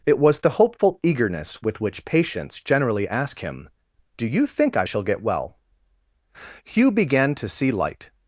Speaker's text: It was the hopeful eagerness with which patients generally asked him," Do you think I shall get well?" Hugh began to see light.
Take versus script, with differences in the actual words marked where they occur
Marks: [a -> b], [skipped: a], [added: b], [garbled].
It was the hopeful eagerness with which patients generally [asked -> ask] him," Do you think I shall get well?" Hugh began to see light.